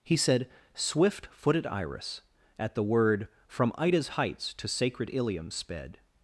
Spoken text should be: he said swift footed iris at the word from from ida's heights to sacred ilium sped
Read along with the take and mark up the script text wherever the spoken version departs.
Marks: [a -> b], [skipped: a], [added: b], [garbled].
he said swift footed iris at the word from [skipped: from] ida's heights to sacred ilium sped